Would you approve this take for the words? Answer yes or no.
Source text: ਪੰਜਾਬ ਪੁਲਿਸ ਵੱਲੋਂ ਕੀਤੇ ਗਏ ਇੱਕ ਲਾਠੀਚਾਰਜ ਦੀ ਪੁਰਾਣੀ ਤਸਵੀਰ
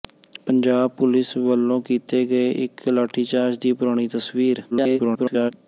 no